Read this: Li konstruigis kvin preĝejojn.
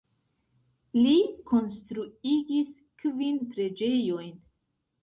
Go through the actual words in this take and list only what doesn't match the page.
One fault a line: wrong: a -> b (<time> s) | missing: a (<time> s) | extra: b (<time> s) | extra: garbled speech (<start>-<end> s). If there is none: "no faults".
no faults